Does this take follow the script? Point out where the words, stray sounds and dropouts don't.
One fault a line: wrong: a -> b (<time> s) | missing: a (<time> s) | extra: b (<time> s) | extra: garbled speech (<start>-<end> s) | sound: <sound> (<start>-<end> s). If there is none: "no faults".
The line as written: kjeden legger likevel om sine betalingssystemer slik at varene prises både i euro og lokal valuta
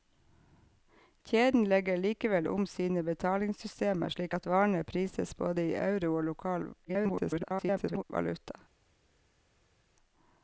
extra: garbled speech (6.8-8.0 s)